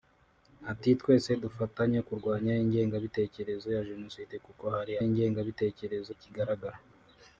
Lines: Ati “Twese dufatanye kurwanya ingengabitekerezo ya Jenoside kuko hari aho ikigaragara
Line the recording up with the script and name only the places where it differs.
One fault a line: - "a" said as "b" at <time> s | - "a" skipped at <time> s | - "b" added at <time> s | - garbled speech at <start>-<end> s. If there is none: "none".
- "aho" said as "ingengabitekerezo" at 5.1 s